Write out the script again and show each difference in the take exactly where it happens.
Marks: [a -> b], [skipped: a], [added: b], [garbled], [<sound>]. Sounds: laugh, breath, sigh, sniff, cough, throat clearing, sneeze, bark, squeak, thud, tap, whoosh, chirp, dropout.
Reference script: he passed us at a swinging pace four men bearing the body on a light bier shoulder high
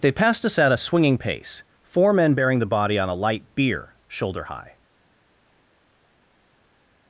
[he -> they] passed us at a swinging pace four men bearing the body on a light bier shoulder high